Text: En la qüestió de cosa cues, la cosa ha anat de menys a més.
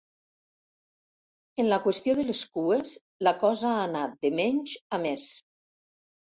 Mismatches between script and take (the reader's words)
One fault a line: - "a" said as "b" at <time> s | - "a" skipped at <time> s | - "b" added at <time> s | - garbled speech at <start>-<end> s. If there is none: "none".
- "cosa" said as "les" at 2.3 s